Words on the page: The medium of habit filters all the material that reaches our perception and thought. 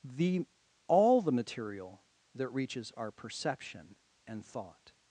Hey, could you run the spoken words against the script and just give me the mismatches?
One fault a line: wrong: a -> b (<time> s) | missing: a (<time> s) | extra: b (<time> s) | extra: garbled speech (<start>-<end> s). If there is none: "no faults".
missing: medium of habit filters (0.5 s)